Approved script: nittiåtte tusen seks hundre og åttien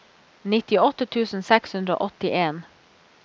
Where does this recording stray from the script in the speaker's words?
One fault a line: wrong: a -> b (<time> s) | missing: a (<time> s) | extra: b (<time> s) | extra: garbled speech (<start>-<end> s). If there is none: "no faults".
no faults